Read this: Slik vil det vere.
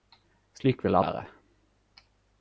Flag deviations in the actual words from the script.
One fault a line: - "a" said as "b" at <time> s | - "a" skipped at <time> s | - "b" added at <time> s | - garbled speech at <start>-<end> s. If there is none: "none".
none